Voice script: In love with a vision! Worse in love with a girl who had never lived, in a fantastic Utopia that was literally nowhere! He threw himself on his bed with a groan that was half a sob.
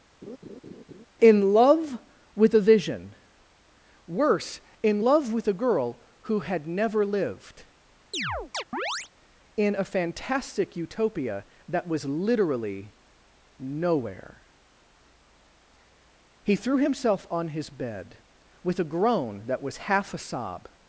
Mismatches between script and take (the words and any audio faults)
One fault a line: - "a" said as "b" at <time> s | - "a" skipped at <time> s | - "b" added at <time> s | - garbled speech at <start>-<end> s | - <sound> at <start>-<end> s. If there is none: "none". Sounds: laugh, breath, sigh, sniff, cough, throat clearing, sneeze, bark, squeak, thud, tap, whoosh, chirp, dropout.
- laugh at 0.2-1.1 s
- chirp at 8.1-9.1 s